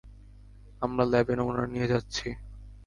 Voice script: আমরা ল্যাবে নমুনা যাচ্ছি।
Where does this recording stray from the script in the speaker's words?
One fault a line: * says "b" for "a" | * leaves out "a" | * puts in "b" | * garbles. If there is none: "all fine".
* puts in "নিয়ে"